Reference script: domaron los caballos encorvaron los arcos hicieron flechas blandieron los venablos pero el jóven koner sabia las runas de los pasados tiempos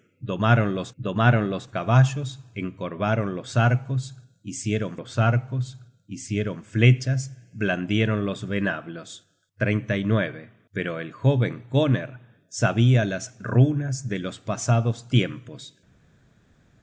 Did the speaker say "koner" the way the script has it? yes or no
yes